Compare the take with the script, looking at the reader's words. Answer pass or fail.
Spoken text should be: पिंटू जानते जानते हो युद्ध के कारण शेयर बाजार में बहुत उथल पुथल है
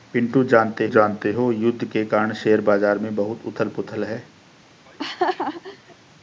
pass